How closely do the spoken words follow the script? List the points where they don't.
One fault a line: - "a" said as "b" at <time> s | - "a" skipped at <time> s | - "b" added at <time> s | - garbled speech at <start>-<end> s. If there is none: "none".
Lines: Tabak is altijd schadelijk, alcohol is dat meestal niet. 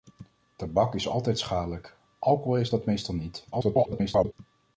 - garbled speech at 3.5-4.3 s